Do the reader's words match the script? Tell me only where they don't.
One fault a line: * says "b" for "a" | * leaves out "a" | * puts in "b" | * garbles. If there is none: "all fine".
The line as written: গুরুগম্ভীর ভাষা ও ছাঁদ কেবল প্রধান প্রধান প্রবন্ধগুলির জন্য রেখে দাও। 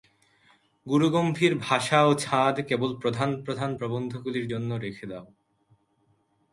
all fine